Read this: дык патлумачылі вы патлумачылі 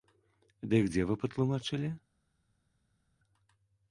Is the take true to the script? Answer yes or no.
no